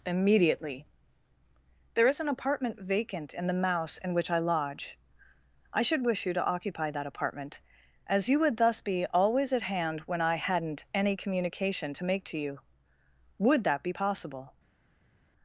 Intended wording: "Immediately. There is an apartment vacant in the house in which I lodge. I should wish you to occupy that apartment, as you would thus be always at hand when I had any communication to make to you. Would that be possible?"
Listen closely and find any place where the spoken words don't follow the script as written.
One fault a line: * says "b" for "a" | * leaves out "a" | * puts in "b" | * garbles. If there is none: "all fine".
* says "mouse" for "house"
* says "hadn't" for "had"